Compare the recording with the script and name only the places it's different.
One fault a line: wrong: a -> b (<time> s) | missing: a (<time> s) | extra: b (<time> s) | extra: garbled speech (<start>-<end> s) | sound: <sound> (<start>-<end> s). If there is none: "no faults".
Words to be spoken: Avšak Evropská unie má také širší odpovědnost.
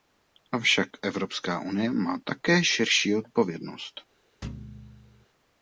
sound: thud (4.4-5.3 s)